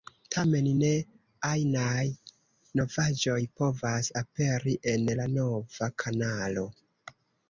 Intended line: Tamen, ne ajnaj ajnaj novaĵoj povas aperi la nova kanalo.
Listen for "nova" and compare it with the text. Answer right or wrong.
right